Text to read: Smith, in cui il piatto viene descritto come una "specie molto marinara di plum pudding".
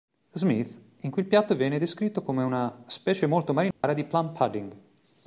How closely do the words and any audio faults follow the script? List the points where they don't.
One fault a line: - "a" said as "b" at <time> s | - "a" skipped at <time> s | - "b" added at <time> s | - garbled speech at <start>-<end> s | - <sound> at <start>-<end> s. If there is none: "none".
- dropout at 3.7-3.8 s